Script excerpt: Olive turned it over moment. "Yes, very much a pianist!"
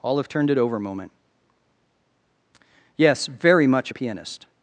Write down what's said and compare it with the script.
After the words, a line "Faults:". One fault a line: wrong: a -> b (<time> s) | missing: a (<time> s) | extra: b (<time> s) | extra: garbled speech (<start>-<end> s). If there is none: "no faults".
Olive turned it over moment. "Yes, very much a pianist!"
Faults:
no faults